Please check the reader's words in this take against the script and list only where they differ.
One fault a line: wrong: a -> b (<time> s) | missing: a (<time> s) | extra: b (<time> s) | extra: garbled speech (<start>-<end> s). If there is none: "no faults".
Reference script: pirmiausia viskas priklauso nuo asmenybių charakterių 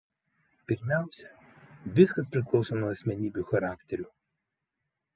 no faults